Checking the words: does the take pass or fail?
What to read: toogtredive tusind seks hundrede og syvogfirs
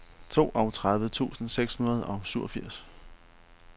pass